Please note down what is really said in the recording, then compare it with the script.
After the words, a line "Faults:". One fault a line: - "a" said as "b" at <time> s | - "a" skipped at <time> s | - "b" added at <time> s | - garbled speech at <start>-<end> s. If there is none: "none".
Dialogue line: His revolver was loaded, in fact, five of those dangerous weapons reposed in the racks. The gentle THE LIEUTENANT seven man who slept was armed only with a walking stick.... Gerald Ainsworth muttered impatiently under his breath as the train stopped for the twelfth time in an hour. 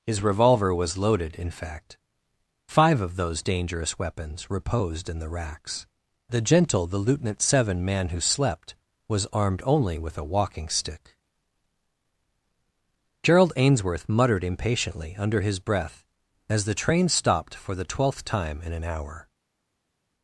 His revolver was loaded, in fact, five of those dangerous weapons reposed in the racks. The gentle THE LIEUTENANT seven man who slept was armed only with a walking stick.... Gerald Ainsworth muttered impatiently under his breath as the train stopped for the twelfth time in an hour.
Faults:
none